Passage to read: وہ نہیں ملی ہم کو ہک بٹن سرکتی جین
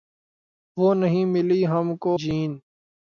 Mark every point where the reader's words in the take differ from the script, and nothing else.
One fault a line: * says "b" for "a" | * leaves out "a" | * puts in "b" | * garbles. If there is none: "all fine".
* leaves out "ہک بٹن سرکتی"